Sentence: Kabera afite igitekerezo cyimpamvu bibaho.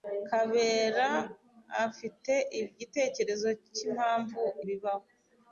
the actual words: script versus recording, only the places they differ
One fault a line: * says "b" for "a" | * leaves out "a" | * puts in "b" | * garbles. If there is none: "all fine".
all fine